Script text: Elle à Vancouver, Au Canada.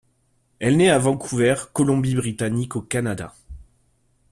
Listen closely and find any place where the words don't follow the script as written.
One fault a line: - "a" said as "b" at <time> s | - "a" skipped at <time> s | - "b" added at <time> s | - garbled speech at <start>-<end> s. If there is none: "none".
- "naît" added at 0.8 s
- "Colombie Britannique" added at 1.7 s